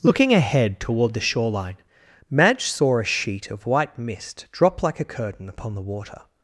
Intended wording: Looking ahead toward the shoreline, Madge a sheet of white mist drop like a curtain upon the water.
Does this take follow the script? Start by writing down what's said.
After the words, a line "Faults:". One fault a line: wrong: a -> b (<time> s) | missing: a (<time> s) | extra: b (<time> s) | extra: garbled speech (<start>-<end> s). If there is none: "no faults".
Looking ahead toward the shoreline, Madge saw a sheet of white mist drop like a curtain upon the water.
Faults:
extra: saw (2.6 s)